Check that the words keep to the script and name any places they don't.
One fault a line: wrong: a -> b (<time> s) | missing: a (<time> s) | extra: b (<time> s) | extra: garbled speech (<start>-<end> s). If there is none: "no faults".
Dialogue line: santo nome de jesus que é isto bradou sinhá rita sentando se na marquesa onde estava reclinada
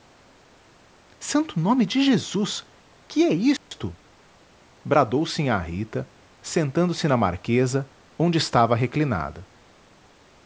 no faults